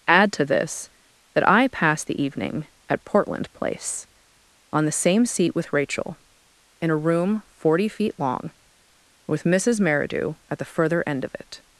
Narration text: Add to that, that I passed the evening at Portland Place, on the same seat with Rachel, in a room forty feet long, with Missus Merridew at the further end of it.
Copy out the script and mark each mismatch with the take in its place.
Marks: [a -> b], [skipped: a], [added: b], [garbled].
Add to [that, -> this] that I passed the evening at Portland Place, on the same seat with Rachel, in a room forty feet long, with Missus Merridew at the further end of it.